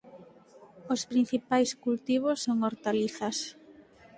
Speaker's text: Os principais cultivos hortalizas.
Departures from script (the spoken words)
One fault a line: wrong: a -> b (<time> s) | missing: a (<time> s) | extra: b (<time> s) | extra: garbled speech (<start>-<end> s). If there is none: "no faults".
extra: son (2.4 s)